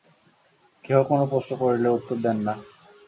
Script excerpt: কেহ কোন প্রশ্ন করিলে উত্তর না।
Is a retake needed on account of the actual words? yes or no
yes